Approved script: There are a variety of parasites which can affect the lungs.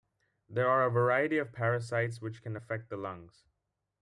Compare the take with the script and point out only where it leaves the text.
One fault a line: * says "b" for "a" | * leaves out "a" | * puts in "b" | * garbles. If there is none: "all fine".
all fine